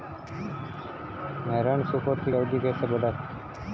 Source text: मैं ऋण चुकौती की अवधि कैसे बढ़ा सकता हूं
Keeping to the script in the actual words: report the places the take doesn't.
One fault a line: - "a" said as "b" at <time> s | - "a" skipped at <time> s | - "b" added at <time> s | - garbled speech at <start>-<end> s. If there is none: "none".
- "की" skipped at 2.3 s
- "सकता" skipped at 3.1 s